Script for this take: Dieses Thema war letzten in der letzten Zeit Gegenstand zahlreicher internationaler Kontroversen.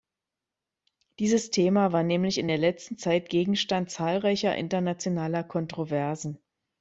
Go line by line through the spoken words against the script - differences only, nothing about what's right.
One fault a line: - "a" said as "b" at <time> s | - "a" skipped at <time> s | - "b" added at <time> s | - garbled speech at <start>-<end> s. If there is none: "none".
- "letzten" said as "nämlich" at 2.0 s